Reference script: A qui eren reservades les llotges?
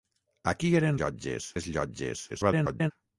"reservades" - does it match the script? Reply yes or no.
no